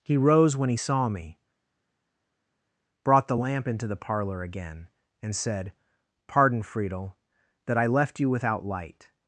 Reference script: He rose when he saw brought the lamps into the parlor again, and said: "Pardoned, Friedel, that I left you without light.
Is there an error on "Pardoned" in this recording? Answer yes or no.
yes